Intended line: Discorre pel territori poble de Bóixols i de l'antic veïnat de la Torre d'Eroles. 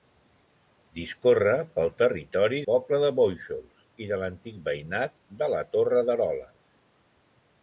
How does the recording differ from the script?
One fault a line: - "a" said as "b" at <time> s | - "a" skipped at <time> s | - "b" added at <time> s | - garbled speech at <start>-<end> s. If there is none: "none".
none